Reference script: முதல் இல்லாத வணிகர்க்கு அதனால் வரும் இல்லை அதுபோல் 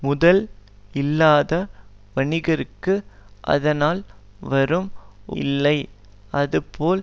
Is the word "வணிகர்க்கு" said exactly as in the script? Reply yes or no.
yes